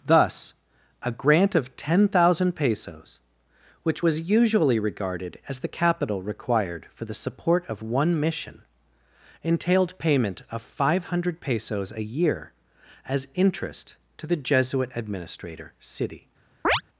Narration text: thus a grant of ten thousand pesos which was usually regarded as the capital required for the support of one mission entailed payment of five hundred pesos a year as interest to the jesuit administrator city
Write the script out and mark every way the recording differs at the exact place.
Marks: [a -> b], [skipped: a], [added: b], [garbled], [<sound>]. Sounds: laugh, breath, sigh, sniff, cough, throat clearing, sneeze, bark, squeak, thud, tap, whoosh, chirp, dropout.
thus a grant of ten thousand pesos which was usually regarded as the capital required for the support of one mission entailed payment of five hundred pesos a year as interest to the jesuit administrator city [chirp]